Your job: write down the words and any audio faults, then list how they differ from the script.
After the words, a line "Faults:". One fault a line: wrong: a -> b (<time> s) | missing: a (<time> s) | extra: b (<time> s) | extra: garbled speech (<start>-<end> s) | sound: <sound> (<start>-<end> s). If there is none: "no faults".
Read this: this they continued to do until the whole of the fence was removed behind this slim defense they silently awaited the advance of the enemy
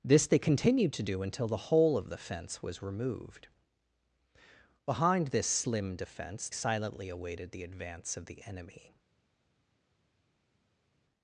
this they continued to do until the whole of the fence was removed behind this slim defense silently awaited the advance of the enemy
Faults:
missing: they (6.5 s)